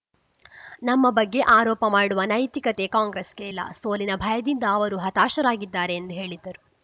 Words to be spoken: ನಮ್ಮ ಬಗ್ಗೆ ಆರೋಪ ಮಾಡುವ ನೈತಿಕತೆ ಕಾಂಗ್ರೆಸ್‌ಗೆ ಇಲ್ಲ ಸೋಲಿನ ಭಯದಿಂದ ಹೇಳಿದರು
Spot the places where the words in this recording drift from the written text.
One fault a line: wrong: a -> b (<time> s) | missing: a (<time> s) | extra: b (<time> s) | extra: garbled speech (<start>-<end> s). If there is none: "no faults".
extra: ಅವರು ಹತಾಶರಾಗಿದ್ದಾರೆ ಎಂದು (4.7 s)